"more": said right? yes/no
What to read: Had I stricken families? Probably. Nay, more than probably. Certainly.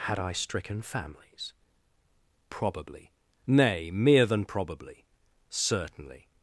no